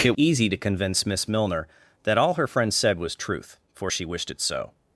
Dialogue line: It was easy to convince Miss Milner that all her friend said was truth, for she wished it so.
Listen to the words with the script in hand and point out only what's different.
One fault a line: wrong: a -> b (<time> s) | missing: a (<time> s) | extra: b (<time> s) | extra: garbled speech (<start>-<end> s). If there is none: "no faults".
missing: was (0.1 s)